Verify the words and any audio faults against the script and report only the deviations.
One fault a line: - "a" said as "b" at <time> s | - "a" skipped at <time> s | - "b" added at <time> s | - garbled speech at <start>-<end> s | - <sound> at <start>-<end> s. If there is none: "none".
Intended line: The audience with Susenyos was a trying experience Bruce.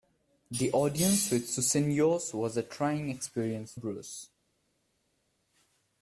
none